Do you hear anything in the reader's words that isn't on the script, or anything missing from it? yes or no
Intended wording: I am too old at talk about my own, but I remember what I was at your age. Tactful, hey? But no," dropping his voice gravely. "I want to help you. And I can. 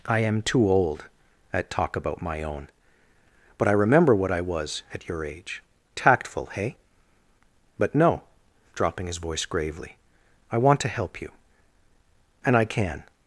no